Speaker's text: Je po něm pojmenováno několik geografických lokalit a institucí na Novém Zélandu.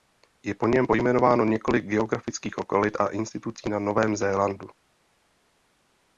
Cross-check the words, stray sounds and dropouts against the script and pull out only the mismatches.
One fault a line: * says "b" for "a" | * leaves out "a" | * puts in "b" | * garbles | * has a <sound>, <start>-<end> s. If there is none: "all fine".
all fine